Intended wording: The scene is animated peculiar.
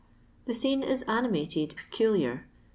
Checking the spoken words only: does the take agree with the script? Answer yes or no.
yes